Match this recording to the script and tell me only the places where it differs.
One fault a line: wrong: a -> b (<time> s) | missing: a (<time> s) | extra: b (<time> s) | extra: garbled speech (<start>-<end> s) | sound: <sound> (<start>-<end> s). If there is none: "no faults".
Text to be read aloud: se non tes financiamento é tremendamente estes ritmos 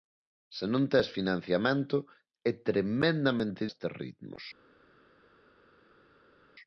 no faults